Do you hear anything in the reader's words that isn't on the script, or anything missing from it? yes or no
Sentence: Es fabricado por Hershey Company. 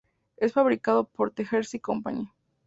yes